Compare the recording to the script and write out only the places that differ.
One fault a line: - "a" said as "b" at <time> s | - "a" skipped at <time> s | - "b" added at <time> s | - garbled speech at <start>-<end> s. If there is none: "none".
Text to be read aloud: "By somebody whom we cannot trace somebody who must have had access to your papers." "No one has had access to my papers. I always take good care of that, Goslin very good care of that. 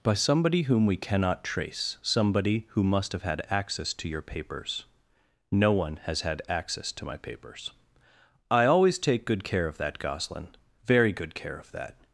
none